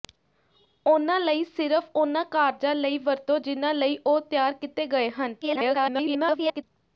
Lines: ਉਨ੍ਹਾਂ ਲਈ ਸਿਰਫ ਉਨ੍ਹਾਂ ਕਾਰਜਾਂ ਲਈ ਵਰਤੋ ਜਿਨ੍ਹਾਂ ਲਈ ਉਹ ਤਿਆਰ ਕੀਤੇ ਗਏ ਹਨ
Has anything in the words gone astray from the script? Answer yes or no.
yes